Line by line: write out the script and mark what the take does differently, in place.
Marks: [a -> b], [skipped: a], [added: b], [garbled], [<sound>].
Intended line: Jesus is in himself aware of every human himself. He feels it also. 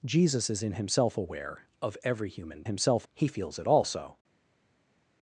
Jesus is in himself aware of every human himself. He feels it also.